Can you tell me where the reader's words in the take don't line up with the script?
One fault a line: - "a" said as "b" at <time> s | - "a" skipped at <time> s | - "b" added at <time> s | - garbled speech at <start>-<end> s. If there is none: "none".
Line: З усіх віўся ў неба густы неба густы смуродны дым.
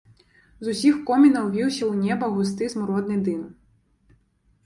- "комінаў" added at 1.1 s
- "неба густы" skipped at 2.7 s